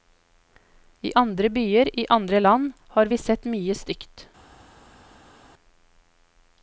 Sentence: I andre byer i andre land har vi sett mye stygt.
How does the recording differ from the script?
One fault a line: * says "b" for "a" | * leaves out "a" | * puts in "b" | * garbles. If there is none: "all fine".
all fine